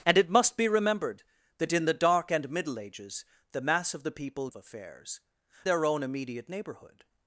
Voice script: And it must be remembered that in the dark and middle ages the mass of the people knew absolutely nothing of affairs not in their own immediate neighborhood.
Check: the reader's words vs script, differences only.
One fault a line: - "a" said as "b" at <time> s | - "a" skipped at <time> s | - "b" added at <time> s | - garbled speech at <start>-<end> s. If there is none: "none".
- "knew absolutely nothing" skipped at 4.5 s
- "not in" skipped at 5.2 s